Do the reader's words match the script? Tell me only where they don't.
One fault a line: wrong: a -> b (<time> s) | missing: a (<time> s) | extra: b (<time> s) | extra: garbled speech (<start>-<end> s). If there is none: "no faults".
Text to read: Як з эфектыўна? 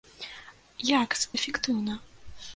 no faults